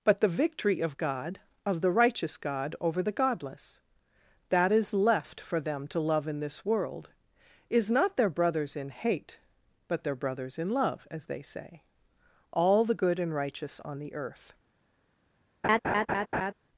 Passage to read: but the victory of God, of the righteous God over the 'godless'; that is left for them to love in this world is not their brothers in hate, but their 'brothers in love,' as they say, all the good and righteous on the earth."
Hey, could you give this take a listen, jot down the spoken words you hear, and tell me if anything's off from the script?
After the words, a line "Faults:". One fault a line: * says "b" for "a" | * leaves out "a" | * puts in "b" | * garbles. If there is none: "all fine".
but the victory of God, of the righteous God over the 'godless'; that is left for them to love in this world is not their brothers in hate, but their 'brothers in love,' as they say, all the good and righteous on the earth."
Faults:
all fine